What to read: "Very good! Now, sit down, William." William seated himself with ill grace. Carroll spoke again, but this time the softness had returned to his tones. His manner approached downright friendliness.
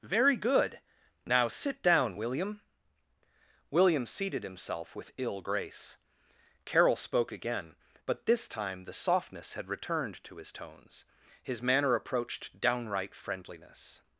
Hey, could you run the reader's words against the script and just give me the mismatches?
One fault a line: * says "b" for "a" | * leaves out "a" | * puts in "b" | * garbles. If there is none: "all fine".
all fine